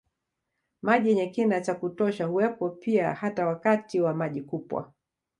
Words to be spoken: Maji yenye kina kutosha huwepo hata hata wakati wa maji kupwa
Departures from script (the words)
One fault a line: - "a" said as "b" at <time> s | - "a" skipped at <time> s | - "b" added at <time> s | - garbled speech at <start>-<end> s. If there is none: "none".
- "cha" added at 1.6 s
- "hata" said as "pia" at 2.7 s